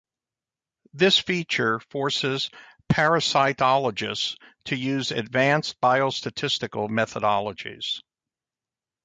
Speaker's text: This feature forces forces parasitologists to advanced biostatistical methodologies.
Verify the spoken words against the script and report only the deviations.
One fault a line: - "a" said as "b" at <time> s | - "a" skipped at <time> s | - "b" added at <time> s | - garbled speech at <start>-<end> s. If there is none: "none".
- "forces" skipped at 2.5 s
- "use" added at 4.8 s